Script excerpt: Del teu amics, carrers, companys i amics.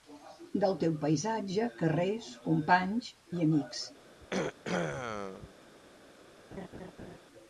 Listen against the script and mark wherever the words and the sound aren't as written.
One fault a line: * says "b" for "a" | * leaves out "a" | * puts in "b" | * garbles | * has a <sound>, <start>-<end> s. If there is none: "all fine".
* says "paisatge" for "amics"
* has a throat clearing, 4.2-5.5 s
* has a laugh, 6.5-7.2 s